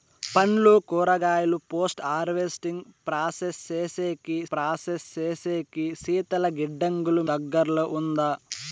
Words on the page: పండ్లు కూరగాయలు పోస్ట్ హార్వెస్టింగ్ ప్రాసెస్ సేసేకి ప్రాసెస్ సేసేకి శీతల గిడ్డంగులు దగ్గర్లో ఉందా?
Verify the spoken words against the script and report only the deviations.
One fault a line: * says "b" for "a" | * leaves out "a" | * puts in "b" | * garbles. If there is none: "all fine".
all fine